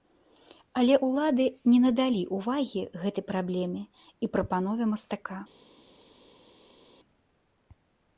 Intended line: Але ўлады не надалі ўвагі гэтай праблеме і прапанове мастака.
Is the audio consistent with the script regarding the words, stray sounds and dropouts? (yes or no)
yes